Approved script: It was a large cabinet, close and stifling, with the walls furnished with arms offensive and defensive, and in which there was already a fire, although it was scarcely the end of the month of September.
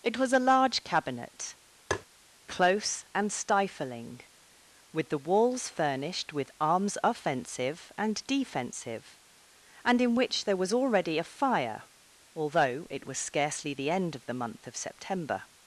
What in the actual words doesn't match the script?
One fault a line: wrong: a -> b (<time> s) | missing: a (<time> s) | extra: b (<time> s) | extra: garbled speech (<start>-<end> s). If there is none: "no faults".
no faults